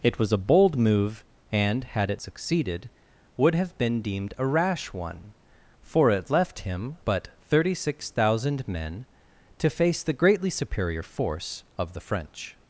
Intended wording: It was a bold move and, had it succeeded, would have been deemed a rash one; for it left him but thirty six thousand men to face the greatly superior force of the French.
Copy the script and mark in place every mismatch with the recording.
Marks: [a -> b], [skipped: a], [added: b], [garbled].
It was a bold move and, had it succeeded, would have been deemed a rash one; for it left him but thirty six thousand men to face the greatly superior force of the French.